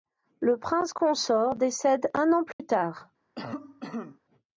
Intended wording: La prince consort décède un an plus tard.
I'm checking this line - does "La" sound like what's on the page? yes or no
no